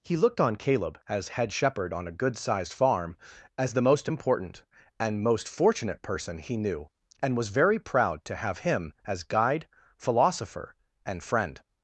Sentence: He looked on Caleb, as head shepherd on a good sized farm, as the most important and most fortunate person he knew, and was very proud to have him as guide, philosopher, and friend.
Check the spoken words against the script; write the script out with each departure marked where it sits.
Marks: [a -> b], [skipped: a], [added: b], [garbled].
He looked on Caleb, as head shepherd on a good sized farm, as the most important and most fortunate person he knew, and was very proud to have him as guide, philosopher, and friend.